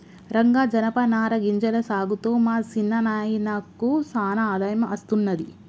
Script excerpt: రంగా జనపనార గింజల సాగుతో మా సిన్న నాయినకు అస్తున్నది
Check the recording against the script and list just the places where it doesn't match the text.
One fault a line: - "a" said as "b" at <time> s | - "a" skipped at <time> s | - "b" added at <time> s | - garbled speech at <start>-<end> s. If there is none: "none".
- "సానా ఆదాయం" added at 4.1 s